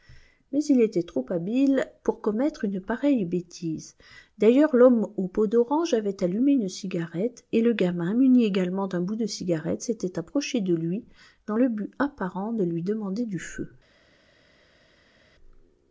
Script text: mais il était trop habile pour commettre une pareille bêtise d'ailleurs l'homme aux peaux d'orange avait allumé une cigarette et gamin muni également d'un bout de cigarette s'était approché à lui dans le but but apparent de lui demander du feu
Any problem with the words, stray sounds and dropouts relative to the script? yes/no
yes